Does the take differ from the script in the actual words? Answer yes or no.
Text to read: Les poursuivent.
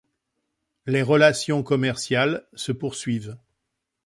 yes